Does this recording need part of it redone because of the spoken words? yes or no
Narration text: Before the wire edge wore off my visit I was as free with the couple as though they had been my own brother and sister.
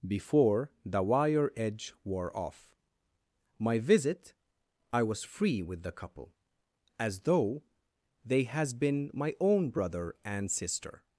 yes